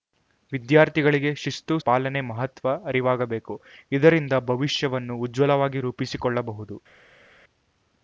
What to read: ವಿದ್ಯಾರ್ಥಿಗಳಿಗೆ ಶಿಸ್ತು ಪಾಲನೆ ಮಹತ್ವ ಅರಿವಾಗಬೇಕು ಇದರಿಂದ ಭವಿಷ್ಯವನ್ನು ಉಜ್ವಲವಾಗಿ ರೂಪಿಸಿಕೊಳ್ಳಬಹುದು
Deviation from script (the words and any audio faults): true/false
false